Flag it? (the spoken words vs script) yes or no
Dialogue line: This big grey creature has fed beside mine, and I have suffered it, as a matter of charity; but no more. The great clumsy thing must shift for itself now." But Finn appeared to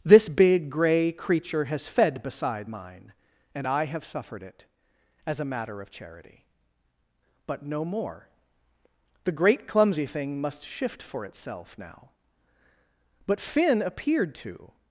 no